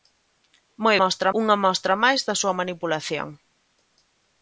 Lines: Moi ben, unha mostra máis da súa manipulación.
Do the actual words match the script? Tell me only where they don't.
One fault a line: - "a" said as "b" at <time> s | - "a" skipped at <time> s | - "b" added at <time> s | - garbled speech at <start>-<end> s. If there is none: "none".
- "ben" said as "mostra" at 1.0 s